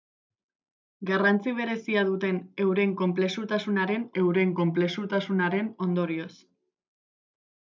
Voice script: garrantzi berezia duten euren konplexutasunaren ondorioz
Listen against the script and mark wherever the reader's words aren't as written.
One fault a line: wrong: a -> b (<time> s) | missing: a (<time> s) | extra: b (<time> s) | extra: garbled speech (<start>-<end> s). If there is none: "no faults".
extra: euren konplexutasunaren (4.2 s)